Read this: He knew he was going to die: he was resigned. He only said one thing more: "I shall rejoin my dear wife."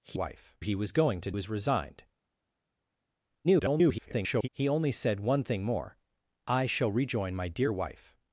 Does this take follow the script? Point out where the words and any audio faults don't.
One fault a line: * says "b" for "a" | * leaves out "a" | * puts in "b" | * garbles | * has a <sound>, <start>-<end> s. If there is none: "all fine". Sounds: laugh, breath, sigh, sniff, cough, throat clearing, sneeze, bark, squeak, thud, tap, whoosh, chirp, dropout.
* says "wife" for "knew"
* leaves out "die he"
* garbles